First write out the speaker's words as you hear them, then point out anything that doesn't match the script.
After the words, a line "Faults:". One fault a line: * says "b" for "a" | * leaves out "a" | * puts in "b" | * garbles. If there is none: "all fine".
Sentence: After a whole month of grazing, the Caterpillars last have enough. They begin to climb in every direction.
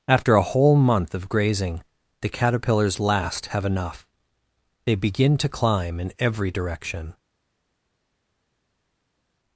After a whole month of grazing, the Caterpillars last have enough. They begin to climb in every direction.
Faults:
all fine